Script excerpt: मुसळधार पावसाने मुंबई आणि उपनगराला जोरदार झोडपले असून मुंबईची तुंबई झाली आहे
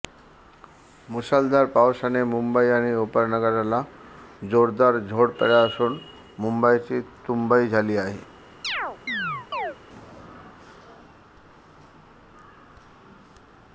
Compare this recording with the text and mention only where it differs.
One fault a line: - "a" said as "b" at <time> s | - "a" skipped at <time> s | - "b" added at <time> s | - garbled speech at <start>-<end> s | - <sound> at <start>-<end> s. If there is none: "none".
- chirp at 8.6-9.8 s